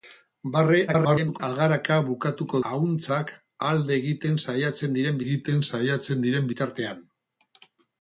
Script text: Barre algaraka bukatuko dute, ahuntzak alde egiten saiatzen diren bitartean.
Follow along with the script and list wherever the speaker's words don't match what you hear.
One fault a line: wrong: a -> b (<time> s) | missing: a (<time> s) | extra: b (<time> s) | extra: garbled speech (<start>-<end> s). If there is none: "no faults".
extra: garbled speech (0.9-1.4 s)
missing: dute (2.6 s)
extra: egiten saiatzen diren (5.2 s)